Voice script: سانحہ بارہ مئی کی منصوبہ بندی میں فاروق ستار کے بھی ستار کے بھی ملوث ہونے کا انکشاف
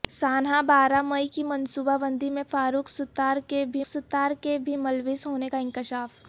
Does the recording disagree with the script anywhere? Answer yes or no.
no